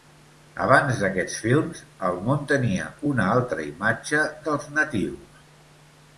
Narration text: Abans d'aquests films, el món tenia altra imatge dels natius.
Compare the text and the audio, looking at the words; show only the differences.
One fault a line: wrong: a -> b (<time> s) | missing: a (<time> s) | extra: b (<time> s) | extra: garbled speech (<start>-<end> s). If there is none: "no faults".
extra: una (3.1 s)